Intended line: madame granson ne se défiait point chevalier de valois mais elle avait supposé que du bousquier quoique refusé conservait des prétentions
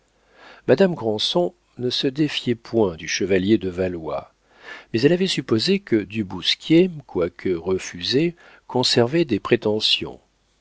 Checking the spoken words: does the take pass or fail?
fail